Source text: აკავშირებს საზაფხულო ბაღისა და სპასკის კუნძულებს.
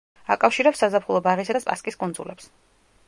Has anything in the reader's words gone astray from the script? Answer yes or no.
no